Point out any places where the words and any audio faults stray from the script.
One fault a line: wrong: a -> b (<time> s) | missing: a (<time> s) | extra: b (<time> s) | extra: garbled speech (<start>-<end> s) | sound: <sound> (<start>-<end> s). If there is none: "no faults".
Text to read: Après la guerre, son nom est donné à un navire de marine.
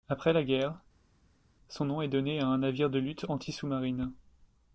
extra: lutte anti sous (3.0 s)